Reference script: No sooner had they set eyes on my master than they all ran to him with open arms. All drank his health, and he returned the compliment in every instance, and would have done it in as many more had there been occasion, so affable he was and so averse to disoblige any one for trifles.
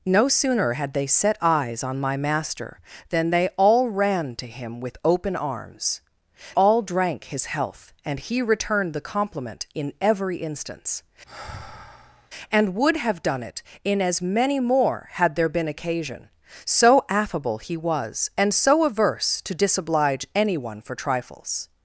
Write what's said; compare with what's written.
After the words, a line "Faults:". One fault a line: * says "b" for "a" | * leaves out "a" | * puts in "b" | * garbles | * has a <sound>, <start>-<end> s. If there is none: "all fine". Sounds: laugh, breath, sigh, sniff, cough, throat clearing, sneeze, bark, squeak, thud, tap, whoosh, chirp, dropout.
No sooner had they set eyes on my master than they all ran to him with open arms. All drank his health, and he returned the compliment in every instance, and would have done it in as many more had there been occasion, so affable he was and so averse to disoblige any one for trifles.
Faults:
* has a sigh, 11.3-12.3 s